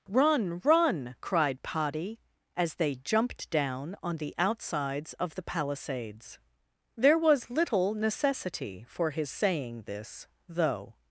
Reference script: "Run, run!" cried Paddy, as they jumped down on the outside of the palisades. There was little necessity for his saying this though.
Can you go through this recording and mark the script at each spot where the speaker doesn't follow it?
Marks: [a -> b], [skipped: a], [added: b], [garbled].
"Run, run!" cried Paddy, as they jumped down on the [outside -> outsides] of the palisades. There was little necessity for his saying this though.